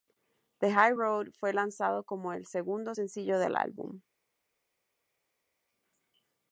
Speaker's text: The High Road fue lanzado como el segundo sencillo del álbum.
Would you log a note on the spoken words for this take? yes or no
no